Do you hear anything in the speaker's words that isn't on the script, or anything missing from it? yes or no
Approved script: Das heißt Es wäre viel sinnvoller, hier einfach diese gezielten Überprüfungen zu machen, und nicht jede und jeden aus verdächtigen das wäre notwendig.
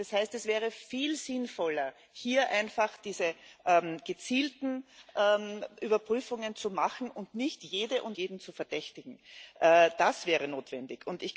yes